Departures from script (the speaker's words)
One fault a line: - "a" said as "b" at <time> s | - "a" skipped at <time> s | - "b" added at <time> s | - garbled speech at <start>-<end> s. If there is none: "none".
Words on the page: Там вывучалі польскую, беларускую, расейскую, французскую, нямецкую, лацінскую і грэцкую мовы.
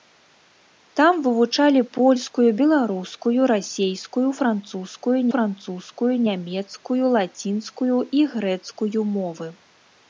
- "французскую" added at 5.3 s